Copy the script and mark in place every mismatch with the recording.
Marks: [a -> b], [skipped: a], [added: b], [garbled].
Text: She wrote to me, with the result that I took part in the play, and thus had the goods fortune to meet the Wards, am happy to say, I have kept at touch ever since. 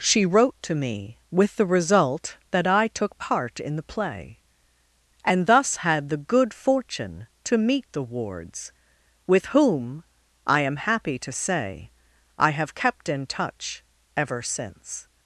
She wrote to me, with the result that I took part in the play, and thus had the [goods -> good] fortune to meet the Wards, [added: with whom I] am happy to say, I have kept [at -> in] touch ever since.